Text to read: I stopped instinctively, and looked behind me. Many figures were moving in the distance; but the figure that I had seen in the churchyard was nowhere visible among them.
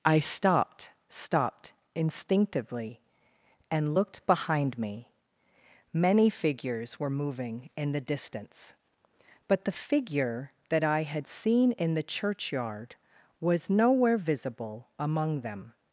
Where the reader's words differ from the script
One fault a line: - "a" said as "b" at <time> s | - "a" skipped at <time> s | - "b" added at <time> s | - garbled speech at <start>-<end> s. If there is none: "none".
- "stopped" added at 1.1 s